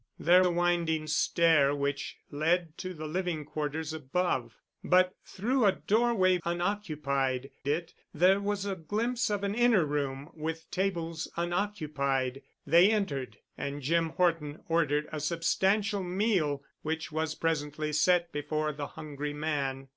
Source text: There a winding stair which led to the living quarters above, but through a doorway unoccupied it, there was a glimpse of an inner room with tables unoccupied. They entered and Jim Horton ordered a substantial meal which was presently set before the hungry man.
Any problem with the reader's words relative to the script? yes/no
no